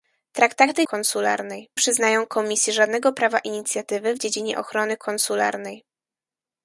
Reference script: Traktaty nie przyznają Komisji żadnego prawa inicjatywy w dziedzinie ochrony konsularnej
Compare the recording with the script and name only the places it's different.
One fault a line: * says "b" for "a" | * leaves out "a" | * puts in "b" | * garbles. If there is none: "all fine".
* says "konsularnej" for "nie"